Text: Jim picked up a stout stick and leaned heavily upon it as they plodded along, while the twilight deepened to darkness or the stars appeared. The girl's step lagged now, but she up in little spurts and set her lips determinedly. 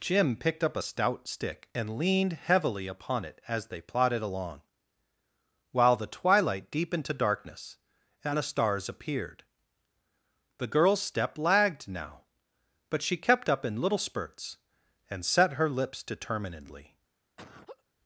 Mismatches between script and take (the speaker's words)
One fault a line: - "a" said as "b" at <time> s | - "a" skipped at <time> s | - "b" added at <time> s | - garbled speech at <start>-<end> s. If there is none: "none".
- "or" said as "and" at 8.2 s
- "kept" added at 13.2 s